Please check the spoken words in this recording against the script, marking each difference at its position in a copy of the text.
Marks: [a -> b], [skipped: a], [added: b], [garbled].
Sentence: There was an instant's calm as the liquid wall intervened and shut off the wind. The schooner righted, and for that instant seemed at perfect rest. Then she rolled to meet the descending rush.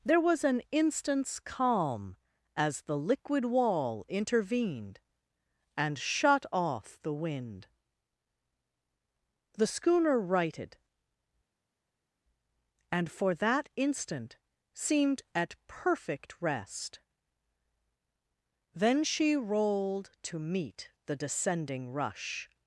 There was an instant's calm as the liquid wall intervened and shut off the wind. The schooner righted, and for that instant seemed at perfect rest. Then she rolled to meet the descending rush.